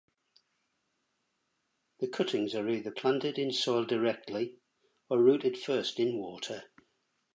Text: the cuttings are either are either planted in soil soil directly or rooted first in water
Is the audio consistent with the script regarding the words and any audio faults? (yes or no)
no